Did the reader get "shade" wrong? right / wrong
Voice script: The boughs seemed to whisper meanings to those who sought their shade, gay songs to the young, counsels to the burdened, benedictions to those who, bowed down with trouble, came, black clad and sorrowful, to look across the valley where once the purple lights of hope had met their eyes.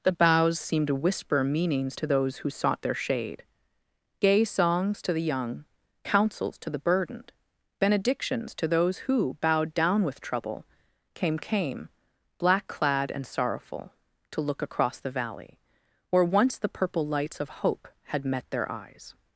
right